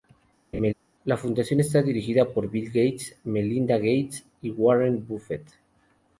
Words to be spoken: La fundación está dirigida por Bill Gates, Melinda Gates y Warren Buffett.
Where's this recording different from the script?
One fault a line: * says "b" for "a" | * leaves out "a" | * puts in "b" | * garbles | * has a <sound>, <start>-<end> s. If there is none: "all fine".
* has a laugh, 0.5-0.7 s